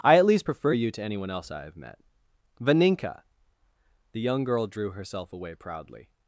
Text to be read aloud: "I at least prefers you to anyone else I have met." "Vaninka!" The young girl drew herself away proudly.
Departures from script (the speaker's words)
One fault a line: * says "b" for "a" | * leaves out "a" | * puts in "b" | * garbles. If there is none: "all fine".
* says "prefer" for "prefers"